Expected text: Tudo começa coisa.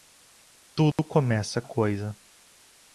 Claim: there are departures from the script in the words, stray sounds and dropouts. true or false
true